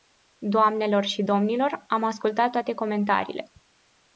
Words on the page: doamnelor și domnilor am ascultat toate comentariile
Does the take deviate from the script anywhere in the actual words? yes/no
no